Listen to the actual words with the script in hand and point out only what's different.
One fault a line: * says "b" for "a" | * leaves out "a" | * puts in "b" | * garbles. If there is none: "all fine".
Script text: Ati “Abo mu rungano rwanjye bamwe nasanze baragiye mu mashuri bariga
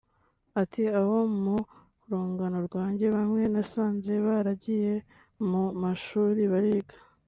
all fine